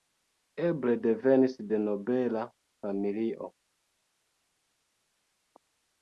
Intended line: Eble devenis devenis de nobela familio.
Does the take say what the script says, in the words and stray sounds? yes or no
no